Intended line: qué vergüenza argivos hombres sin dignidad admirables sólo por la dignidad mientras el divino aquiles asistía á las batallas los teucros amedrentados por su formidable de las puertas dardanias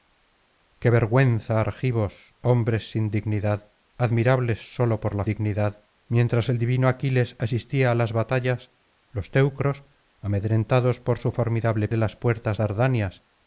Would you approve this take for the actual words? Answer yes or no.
yes